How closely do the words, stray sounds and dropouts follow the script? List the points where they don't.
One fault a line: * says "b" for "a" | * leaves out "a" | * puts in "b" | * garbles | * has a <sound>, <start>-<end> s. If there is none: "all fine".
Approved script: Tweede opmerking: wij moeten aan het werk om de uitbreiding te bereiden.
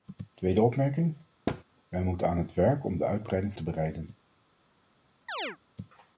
* has a thud, 1.5-1.6 s
* has a chirp, 5.3-5.6 s